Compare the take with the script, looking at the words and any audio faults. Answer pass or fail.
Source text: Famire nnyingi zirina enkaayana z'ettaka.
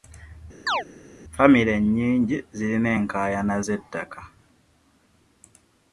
fail